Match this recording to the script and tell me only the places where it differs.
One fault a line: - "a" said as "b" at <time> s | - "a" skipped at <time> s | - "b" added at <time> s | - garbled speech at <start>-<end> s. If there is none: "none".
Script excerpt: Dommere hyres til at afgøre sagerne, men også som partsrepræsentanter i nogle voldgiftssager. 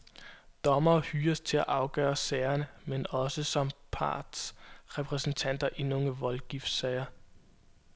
none